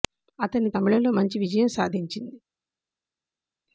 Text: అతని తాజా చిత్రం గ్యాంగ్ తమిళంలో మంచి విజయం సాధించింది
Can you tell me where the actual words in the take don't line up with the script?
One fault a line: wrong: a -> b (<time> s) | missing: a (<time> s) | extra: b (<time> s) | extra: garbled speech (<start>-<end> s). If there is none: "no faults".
missing: తాజా చిత్రం గ్యాంగ్ (0.7 s)